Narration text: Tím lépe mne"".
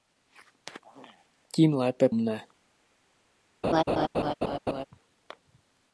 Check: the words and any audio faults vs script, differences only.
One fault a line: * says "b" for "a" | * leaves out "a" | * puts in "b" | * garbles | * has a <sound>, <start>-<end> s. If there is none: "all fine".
* has a laugh, 3.6-4.8 s